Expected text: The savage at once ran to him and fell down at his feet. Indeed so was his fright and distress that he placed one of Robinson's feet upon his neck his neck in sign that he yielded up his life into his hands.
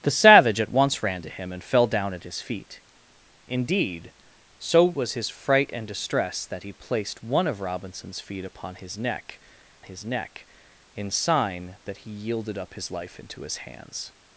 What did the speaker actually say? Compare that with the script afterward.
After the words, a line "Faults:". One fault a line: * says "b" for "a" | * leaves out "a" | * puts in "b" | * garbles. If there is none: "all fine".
The savage at once ran to him and fell down at his feet. Indeed so was his fright and distress that he placed one of Robinson's feet upon his neck his neck in sign that he yielded up his life into his hands.
Faults:
all fine